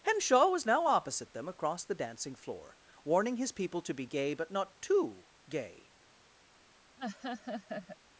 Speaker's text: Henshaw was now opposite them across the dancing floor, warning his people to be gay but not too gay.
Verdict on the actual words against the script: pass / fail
pass